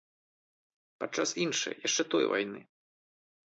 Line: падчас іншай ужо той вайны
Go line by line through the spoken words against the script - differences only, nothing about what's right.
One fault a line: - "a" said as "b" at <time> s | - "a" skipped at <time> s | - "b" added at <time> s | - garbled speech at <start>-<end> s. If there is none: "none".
- "ужо" said as "яшчэ" at 1.9 s